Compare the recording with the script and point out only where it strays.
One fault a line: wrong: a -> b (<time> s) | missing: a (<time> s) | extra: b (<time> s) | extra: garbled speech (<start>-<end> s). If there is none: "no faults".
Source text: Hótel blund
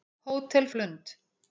no faults